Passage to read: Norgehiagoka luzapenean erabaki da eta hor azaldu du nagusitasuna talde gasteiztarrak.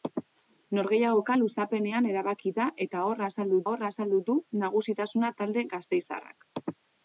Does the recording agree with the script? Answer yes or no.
no